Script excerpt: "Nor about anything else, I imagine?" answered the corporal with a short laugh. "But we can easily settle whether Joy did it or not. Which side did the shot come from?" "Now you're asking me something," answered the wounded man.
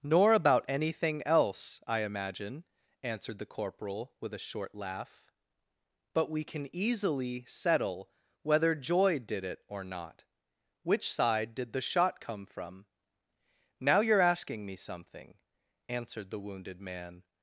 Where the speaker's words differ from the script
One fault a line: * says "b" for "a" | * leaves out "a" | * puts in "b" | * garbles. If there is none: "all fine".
all fine